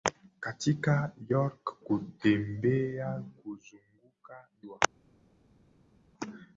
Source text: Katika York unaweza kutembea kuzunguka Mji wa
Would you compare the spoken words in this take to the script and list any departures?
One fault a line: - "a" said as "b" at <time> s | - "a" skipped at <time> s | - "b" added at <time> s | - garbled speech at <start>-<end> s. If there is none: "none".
- "unaweza" skipped at 1.8 s
- "Mji" skipped at 4.5 s